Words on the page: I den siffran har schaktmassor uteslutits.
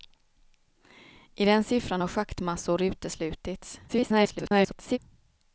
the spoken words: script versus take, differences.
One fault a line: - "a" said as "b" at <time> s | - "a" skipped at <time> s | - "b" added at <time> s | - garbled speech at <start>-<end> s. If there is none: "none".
- garbled speech at 3.9-5.0 s